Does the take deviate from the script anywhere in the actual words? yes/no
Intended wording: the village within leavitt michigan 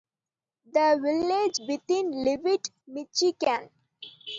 no